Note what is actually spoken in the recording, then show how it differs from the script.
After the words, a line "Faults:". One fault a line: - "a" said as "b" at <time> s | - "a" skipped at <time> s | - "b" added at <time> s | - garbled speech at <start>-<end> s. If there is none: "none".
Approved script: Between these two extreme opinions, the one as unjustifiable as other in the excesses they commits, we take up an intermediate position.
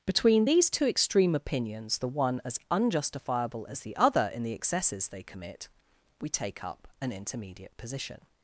Between these two extreme opinions, the one as unjustifiable as the other in the excesses they commit, we take up an intermediate position.
Faults:
- "the" added at 3.8 s
- "commits" said as "commit" at 5.2 s